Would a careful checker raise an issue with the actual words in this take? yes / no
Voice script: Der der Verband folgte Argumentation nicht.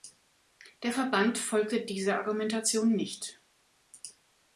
yes